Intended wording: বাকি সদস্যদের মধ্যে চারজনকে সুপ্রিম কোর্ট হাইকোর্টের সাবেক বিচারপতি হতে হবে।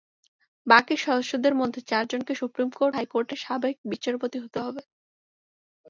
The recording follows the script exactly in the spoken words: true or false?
true